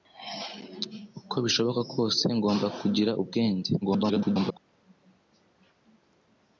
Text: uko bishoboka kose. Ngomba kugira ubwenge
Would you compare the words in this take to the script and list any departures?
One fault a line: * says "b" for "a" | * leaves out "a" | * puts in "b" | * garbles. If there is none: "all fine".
* garbles